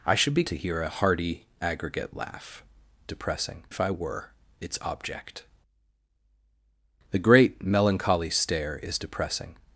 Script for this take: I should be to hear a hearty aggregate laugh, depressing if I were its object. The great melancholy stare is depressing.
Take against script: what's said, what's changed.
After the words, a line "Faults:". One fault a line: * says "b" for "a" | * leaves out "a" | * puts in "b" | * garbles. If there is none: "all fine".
I should be to hear a hearty aggregate laugh, depressing if I were its object. The great melancholy stare is depressing.
Faults:
all fine